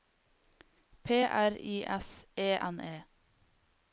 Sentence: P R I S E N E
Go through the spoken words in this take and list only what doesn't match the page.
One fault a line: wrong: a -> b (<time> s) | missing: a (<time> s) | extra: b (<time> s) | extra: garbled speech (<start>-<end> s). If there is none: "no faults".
no faults